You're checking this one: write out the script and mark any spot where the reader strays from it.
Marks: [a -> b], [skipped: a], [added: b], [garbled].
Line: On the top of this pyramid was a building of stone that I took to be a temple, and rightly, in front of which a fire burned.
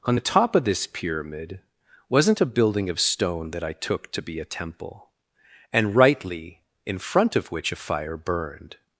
On the top of this pyramid [was -> wasn't] a building of stone that I took to be a temple, and rightly, in front of which a fire burned.